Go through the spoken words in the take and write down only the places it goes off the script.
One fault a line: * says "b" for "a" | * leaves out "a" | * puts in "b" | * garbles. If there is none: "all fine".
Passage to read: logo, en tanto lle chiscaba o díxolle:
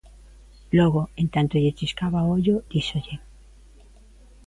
* puts in "ollo"